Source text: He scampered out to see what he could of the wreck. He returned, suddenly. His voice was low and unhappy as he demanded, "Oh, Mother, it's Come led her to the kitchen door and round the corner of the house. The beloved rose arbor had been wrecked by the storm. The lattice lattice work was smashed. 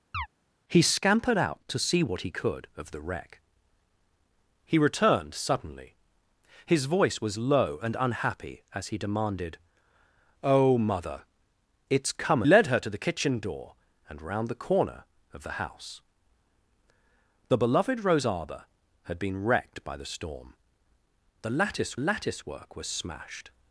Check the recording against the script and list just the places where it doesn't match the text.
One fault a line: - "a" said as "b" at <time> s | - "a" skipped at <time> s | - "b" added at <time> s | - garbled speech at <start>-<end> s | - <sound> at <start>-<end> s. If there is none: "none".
- chirp at 0.1-0.3 s